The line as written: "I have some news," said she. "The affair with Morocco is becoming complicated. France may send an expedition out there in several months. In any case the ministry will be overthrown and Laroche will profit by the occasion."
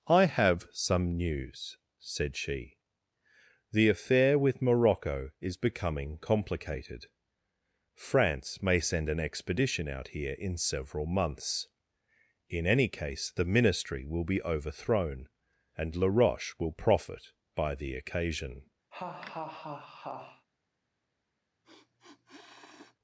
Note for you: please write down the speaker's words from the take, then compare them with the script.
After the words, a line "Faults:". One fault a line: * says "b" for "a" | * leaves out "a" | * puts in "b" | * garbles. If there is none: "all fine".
"I have some news," said she. "The affair with Morocco is becoming complicated. France may send an expedition out here in several months. In any case the ministry will be overthrown and Laroche will profit by the occasion."
Faults:
* says "here" for "there"